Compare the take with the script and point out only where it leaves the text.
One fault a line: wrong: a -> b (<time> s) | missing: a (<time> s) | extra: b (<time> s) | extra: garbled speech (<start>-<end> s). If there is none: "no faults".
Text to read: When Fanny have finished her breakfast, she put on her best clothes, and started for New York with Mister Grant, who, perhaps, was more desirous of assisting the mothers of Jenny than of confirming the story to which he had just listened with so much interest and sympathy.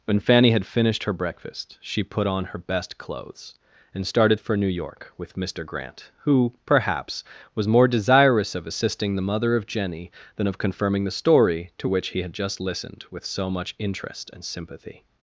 wrong: have -> had (0.5 s)
wrong: mothers -> mother (9.2 s)